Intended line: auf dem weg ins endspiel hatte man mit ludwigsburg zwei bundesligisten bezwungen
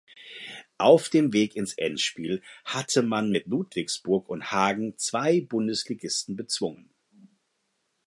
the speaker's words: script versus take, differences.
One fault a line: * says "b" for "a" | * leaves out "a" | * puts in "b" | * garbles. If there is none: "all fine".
* puts in "und hagen"